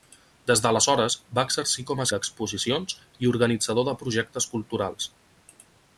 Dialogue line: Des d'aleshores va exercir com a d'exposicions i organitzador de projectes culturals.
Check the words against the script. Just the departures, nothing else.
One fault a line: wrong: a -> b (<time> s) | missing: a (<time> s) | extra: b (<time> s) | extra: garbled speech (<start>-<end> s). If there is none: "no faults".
no faults